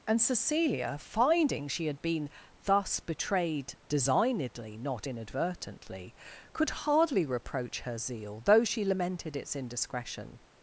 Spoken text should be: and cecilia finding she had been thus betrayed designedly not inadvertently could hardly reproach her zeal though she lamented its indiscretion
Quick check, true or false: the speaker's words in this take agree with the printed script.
true